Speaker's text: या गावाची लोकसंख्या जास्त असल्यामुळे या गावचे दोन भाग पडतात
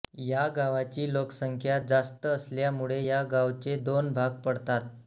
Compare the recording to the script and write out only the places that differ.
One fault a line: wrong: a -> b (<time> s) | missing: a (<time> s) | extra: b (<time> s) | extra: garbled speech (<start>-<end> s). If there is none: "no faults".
no faults